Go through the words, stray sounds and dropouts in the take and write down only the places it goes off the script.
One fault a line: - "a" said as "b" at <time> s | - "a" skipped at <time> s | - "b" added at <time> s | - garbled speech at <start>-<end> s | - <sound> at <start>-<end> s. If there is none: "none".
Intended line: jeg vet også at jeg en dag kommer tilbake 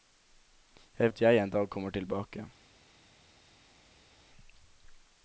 - "vet også" skipped at 1.1 s